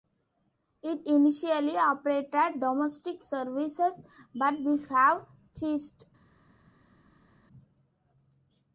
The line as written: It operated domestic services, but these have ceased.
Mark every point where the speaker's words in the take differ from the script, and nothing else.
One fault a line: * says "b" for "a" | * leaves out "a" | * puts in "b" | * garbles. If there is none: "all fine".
* puts in "initially"